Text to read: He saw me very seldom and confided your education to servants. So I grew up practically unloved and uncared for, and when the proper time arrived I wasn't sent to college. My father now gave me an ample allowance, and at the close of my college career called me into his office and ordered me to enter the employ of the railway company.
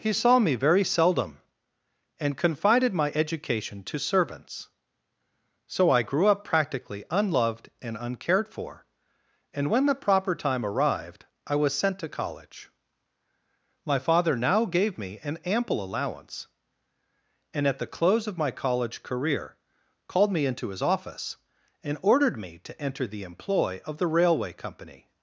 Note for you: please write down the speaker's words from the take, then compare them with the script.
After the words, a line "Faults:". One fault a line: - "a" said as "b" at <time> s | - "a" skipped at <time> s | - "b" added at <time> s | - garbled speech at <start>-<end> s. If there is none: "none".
He saw me very seldom and confided my education to servants. So I grew up practically unloved and uncared for, and when the proper time arrived I was sent to college. My father now gave me an ample allowance, and at the close of my college career called me into his office and ordered me to enter the employ of the railway company.
Faults:
- "your" said as "my" at 2.9 s
- "wasn't" said as "was" at 11.6 s